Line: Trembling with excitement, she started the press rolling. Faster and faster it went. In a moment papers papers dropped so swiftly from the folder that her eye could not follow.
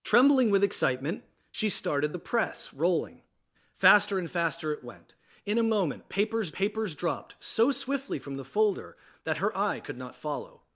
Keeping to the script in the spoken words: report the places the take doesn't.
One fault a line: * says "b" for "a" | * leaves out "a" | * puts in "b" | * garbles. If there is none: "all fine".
all fine